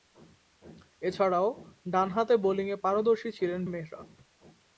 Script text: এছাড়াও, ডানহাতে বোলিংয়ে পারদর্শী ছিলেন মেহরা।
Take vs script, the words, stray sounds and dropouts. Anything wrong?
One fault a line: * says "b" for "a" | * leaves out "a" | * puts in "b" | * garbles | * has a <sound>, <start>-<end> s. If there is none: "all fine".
all fine